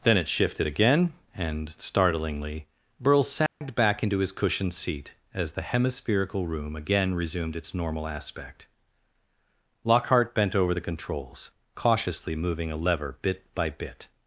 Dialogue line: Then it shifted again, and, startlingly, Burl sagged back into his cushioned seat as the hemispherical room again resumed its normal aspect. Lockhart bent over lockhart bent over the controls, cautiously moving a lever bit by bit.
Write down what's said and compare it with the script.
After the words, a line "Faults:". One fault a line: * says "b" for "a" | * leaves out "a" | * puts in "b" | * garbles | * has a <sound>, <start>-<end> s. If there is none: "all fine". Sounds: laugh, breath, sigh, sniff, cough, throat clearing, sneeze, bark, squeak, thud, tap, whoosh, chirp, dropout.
Then it shifted again, and, startlingly, Burl sagged back into his cushioned seat as the hemispherical room again resumed its normal aspect. Lockhart bent over the controls, cautiously moving a lever bit by bit.
Faults:
* has a dropout, 3.5-3.6 s
* leaves out "lockhart bent over"